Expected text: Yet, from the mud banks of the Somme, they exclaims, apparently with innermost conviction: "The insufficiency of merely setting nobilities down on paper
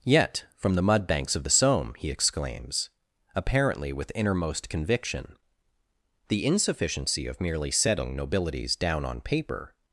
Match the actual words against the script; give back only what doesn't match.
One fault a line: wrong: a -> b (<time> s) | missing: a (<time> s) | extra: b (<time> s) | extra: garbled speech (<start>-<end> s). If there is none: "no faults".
wrong: they -> he (2.0 s)